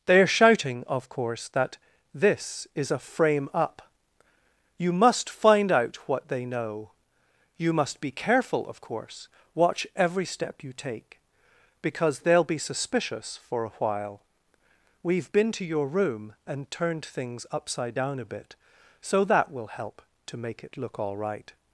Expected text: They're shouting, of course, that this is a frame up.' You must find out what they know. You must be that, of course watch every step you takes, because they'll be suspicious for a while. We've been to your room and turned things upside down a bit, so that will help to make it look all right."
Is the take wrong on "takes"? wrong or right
wrong